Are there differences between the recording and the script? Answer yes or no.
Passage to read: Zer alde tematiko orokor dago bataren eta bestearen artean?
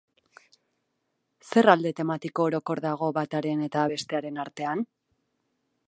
no